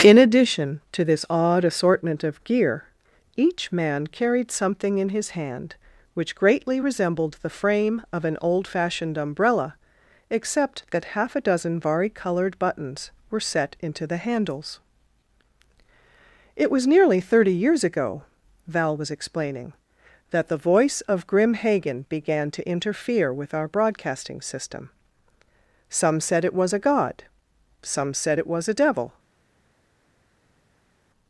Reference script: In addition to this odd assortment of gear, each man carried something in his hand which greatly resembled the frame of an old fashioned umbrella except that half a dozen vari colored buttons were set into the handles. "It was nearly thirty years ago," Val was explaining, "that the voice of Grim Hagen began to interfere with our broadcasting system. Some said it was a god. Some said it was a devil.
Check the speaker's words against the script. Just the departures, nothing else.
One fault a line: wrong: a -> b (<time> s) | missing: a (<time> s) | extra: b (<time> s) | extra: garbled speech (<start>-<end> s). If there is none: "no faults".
no faults